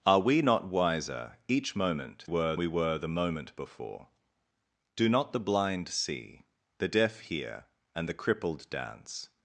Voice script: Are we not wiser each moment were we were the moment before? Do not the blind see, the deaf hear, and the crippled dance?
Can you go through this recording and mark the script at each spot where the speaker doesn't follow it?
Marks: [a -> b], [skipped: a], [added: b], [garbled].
Are we not wiser each moment were we were the moment before? Do not the blind see, the deaf hear, and the crippled dance?